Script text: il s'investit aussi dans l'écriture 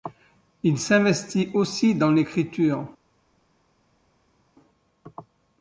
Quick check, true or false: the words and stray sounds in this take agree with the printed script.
true